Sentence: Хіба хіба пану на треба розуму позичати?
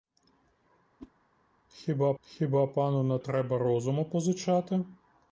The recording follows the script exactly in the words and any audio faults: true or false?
false